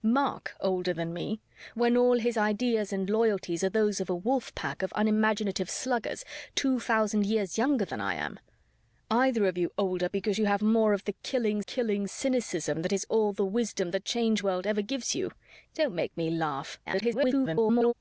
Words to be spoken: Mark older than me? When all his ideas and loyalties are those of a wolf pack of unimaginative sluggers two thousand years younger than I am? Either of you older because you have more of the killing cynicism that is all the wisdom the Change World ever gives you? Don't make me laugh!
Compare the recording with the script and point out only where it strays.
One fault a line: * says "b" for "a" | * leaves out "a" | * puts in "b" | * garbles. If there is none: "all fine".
* puts in "killing"
* garbles